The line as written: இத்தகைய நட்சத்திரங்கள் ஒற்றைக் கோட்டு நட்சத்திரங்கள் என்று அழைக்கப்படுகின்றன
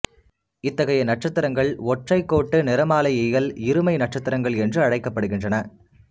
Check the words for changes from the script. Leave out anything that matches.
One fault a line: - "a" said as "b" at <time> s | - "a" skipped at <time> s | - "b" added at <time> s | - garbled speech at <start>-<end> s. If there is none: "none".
- "நிறமாலையியல் இருமை" added at 2.6 s